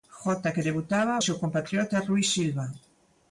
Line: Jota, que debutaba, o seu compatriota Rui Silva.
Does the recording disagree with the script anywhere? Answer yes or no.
no